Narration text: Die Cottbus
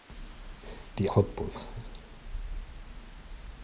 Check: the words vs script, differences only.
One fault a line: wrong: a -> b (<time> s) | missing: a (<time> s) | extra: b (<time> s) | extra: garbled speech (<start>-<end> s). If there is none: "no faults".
no faults